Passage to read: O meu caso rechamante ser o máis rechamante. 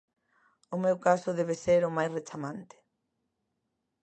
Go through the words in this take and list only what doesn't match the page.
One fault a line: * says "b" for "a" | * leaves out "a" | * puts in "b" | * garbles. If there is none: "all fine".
* says "debe" for "rechamante"